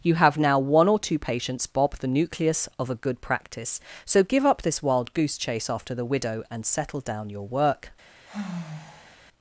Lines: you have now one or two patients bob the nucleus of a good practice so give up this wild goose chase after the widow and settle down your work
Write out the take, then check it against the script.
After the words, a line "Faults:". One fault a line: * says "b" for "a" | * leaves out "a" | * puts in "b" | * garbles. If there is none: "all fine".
you have now one or two patients bob the nucleus of a good practice so give up this wild goose chase after the widow and settle down your work
Faults:
all fine